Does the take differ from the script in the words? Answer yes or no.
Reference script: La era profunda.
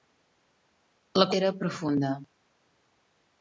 no